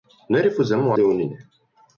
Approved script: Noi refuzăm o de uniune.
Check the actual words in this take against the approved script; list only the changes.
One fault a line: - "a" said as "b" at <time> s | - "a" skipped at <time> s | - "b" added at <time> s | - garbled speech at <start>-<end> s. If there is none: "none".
none